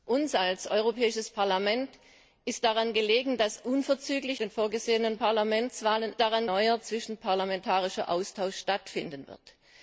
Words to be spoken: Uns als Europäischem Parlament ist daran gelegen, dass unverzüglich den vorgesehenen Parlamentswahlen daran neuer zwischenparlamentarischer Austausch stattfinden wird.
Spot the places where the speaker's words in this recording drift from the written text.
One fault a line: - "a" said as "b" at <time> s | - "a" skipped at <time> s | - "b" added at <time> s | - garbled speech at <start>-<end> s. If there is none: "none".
none